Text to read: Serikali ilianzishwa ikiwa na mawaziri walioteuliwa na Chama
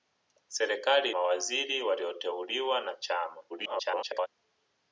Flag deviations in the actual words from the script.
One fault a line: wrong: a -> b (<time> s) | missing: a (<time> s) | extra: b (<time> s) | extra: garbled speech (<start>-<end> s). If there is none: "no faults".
missing: ilianzishwa ikiwa na (1.1 s)
extra: garbled speech (3.5-4.3 s)